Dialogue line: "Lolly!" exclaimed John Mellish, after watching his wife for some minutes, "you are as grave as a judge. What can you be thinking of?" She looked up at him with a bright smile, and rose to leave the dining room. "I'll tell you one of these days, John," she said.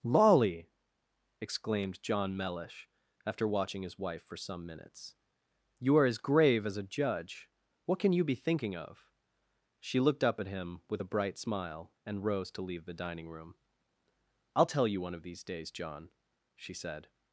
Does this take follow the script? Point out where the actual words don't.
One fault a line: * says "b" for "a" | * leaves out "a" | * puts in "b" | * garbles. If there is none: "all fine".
all fine